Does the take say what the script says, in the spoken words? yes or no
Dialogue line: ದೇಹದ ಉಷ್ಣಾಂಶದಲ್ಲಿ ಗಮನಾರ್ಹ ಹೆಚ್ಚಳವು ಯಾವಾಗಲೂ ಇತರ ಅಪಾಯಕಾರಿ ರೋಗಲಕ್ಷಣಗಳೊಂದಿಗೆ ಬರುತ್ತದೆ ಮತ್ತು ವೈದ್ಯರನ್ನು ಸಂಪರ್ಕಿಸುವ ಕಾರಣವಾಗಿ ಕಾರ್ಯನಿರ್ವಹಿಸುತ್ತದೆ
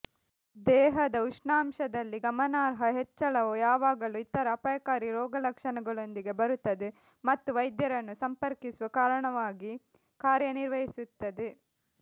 yes